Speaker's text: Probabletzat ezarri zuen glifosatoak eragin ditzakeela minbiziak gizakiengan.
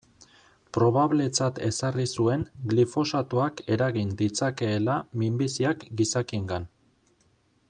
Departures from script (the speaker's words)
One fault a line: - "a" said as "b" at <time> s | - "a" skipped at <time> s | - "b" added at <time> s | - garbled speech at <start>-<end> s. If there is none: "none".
none